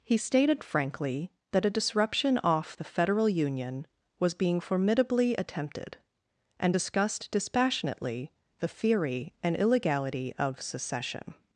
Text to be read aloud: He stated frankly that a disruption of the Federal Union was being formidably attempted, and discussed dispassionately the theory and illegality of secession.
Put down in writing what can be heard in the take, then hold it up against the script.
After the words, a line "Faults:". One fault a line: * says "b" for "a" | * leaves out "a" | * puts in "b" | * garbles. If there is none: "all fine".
He stated frankly that a disruption off the Federal Union was being formidably attempted, and discussed dispassionately the theory and illegality of secession.
Faults:
* says "off" for "of"